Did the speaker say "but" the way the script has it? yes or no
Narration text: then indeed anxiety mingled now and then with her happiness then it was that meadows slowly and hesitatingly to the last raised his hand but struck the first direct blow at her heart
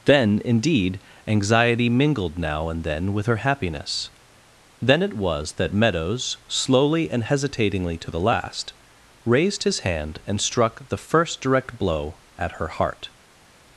no